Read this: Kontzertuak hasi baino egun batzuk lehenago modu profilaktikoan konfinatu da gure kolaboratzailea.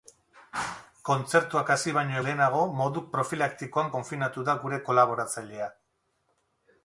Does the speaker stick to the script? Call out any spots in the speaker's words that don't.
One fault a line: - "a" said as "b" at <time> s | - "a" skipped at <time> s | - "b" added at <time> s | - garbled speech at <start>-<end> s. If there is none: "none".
- "egun batzuk" skipped at 2.2 s